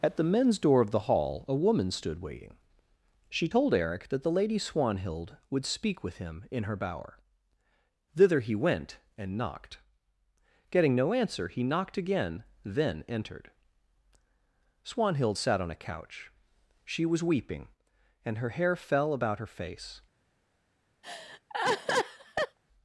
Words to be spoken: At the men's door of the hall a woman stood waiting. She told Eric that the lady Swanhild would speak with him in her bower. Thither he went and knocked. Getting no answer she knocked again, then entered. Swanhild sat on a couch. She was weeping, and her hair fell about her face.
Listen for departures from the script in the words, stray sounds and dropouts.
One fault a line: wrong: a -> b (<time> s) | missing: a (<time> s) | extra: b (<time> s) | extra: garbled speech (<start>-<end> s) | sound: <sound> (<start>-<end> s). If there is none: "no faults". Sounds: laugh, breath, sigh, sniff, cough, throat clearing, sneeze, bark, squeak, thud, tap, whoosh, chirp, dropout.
wrong: she -> he (11.5 s)
sound: laugh (21.0-22.6 s)